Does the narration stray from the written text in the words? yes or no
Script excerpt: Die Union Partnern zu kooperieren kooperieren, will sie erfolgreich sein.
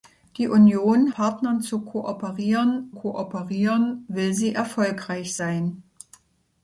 no